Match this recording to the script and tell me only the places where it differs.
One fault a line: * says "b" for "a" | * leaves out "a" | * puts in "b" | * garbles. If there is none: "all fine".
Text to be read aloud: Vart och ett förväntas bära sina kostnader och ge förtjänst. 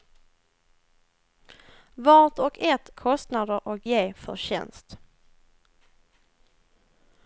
* leaves out "förväntas bära sina"